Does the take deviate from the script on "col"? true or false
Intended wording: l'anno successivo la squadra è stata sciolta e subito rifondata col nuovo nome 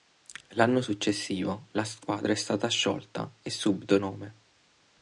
true